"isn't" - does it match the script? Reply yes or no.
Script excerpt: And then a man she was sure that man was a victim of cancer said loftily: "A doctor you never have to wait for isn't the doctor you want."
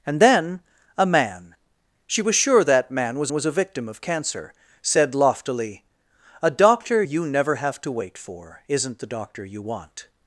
yes